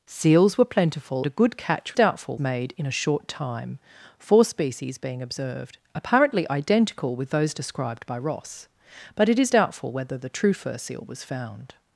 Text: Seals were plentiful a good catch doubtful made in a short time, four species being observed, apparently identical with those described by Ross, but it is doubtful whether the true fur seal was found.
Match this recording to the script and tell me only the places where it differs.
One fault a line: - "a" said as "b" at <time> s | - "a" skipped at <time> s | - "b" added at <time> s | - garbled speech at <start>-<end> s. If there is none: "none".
none